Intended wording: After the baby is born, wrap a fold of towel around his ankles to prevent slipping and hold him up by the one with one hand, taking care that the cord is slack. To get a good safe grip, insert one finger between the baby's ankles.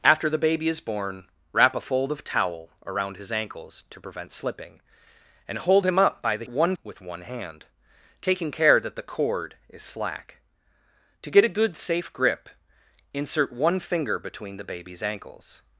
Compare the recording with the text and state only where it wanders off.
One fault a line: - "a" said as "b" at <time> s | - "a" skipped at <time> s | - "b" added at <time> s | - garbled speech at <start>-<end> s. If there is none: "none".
none